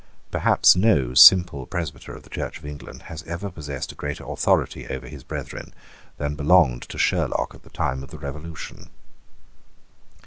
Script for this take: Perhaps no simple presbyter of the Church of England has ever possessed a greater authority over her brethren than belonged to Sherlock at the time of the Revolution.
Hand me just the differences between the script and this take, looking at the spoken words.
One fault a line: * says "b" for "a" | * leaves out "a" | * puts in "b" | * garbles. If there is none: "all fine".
* says "his" for "her"